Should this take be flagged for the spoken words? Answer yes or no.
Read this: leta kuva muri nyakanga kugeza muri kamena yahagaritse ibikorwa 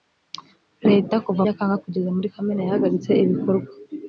yes